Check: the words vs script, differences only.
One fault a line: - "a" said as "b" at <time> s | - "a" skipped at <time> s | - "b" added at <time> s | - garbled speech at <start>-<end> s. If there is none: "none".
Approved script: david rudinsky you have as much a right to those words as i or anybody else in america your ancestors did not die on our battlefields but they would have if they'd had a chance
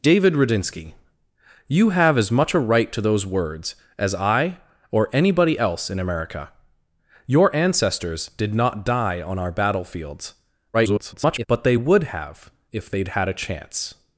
- garbled speech at 10.7-11.5 s